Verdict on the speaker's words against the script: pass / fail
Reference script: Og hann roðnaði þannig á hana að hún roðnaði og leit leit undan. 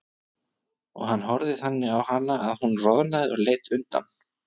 fail